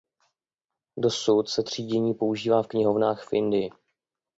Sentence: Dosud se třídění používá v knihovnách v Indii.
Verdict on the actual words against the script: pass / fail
pass